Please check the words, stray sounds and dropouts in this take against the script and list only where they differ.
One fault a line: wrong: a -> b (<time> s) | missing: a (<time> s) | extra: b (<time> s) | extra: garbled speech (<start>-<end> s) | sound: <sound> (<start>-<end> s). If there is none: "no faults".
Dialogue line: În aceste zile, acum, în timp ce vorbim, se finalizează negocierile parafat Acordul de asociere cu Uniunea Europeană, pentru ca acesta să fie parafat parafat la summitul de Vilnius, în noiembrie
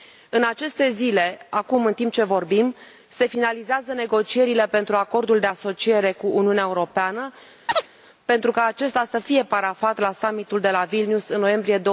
wrong: parafat -> pentru (4.7 s)
sound: chirp (7.7-7.9 s)
missing: parafat (10.0 s)
extra: la (10.7 s)